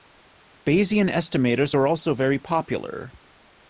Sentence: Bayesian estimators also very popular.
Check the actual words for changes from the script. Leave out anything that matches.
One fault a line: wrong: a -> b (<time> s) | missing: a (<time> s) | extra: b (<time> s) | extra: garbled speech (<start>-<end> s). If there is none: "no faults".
extra: are (1.7 s)